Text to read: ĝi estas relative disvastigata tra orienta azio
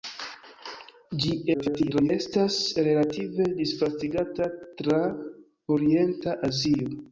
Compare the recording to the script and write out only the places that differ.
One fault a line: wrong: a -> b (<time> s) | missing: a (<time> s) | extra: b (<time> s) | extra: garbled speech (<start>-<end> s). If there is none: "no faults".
extra: garbled speech (1.5-2.1 s)